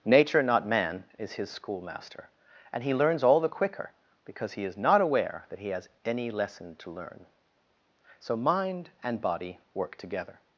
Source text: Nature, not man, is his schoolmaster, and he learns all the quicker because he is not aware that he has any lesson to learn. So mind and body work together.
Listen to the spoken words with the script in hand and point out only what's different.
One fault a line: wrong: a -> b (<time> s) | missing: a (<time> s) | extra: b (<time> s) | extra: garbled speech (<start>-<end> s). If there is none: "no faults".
no faults